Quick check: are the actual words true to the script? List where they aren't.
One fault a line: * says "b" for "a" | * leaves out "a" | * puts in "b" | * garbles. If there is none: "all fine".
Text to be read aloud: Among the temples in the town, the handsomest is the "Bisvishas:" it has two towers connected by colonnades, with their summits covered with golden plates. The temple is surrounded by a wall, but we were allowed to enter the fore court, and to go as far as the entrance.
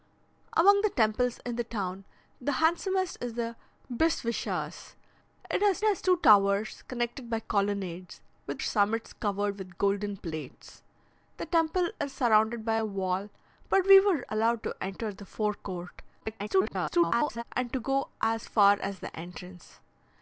* puts in "has"
* leaves out "their"
* garbles